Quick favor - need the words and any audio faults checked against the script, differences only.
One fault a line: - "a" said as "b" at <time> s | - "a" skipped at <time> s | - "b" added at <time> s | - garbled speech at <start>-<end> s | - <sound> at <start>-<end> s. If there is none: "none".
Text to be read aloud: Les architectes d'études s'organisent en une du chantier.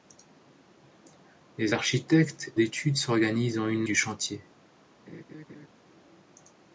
- laugh at 5.1-5.7 s